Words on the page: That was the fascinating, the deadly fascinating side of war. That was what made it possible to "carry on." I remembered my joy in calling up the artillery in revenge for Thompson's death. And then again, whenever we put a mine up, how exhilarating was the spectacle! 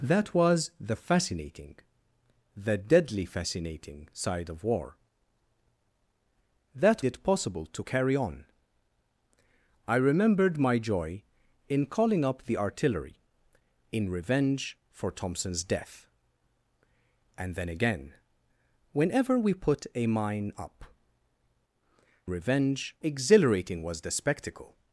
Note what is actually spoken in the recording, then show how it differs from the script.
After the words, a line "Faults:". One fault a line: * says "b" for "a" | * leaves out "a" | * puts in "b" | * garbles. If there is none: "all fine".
That was the fascinating, the deadly fascinating side of war. That it possible to "carry on." I remembered my joy in calling up the artillery in revenge for Thompson's death. And then again, whenever we put a mine up, revenge exhilarating was the spectacle!
Faults:
* leaves out "was what made"
* says "revenge" for "how"